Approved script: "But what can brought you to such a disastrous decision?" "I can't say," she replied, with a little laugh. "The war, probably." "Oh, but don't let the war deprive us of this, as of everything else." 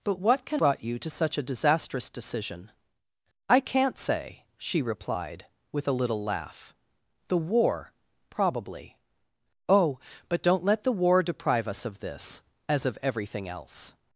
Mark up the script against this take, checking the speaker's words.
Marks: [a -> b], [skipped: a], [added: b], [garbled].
"But what can brought you to such a disastrous decision?" "I can't say," she replied, with a little laugh. "The war, probably." "Oh, but don't let the war deprive us of this, as of everything else."